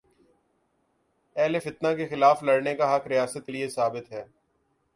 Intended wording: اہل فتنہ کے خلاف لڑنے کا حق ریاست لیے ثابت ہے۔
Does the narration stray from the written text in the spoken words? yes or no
no